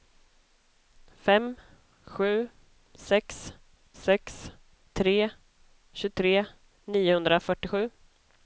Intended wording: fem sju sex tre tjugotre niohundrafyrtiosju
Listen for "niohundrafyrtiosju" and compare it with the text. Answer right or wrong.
right